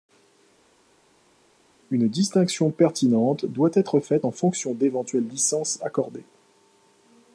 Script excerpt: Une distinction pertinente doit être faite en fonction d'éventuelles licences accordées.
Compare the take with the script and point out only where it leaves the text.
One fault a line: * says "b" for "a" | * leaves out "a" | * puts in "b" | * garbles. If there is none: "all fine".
all fine